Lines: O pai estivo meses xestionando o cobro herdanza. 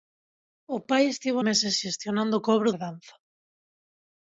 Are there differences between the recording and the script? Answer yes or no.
no